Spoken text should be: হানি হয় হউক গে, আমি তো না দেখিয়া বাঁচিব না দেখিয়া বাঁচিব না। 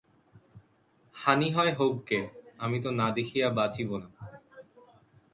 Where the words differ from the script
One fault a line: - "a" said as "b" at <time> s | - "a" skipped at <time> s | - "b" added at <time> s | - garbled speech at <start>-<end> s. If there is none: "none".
- "দেখিয়া বাঁচিব না" skipped at 4.1 s